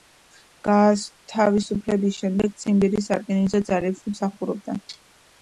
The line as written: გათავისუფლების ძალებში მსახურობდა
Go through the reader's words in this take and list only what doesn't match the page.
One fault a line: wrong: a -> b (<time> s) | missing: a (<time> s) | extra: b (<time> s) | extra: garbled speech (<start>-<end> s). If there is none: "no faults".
extra: შემდეგ ციმბირის სარკინიგზო (2.2 s)